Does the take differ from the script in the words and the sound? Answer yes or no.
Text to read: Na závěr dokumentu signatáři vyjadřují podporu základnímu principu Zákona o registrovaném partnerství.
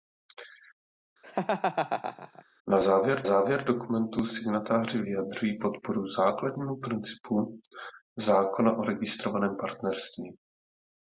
yes